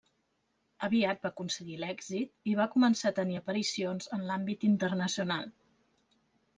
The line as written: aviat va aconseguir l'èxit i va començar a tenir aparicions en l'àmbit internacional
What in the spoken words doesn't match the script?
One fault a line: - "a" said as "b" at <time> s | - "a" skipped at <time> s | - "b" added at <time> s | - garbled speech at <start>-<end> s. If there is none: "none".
none